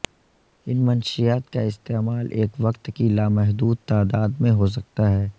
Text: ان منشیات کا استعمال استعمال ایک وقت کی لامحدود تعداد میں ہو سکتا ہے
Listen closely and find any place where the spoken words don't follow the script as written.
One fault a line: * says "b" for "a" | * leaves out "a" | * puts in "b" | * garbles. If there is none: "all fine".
* leaves out "استعمال"